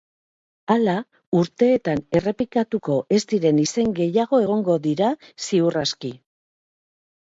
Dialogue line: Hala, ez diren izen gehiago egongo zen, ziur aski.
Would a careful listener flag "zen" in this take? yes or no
yes